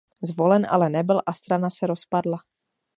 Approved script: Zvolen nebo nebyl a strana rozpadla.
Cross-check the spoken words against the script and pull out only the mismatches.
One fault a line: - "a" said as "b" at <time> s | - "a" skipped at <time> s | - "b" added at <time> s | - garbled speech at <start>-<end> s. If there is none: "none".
- "nebo" said as "ale" at 0.7 s
- "se" added at 1.7 s